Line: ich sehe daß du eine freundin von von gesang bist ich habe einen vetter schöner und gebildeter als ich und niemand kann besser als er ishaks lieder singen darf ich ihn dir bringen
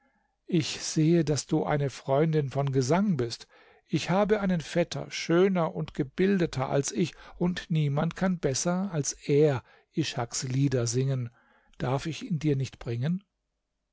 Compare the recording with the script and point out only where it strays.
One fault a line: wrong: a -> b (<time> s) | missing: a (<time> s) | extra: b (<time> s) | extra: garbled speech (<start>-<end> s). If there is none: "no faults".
missing: von (2.7 s)
extra: nicht (12.6 s)